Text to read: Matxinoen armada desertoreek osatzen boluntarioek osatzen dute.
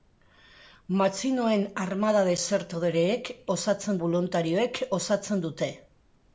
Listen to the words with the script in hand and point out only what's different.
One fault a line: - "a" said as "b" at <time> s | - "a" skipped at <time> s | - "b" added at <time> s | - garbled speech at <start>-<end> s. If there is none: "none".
none